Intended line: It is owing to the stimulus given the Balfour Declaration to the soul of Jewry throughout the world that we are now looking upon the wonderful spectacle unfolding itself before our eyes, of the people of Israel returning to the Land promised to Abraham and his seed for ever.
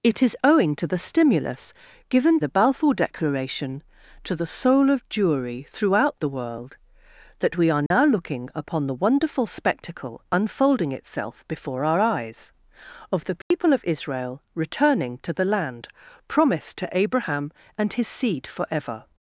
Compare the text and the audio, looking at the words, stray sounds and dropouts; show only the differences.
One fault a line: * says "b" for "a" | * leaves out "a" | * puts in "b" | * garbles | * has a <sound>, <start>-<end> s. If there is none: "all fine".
* has a dropout, 7.9-7.9 s
* has a dropout, 13.4-13.5 s